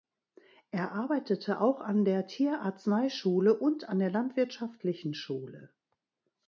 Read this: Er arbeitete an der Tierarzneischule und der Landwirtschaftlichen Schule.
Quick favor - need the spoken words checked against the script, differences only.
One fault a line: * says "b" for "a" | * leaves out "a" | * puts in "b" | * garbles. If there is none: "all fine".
* puts in "auch"
* puts in "an"